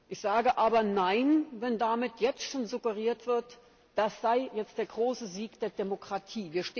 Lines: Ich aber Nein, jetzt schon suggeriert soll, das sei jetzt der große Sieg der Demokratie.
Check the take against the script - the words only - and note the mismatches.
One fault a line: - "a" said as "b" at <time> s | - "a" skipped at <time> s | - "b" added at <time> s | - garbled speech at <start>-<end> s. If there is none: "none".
- "sage" added at 0.2 s
- "wenn damit" added at 1.6 s
- "soll" said as "wird" at 3.3 s